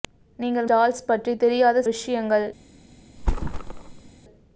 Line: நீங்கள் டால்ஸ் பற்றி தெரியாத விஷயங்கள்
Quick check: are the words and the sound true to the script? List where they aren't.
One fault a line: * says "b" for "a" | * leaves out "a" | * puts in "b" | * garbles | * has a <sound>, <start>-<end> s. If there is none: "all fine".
* has a thud, 3.2-4.1 s